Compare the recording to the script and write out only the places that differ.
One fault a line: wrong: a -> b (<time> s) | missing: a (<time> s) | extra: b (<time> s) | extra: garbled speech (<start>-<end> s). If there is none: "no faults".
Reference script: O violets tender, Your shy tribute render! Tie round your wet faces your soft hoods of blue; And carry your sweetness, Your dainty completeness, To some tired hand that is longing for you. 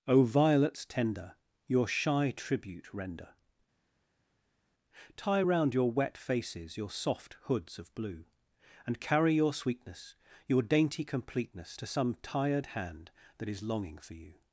no faults